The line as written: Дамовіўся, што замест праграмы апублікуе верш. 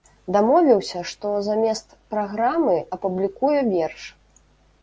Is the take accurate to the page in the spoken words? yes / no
yes